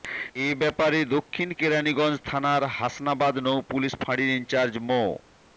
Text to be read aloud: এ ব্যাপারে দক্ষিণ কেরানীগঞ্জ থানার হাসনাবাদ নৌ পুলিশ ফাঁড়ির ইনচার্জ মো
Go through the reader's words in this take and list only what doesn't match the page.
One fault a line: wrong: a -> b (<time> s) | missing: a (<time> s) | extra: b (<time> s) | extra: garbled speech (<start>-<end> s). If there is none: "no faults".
no faults